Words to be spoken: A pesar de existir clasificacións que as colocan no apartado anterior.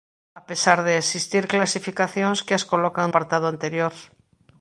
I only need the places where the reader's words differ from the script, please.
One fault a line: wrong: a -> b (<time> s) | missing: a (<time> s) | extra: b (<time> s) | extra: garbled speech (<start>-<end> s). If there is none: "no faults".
missing: no (3.1 s)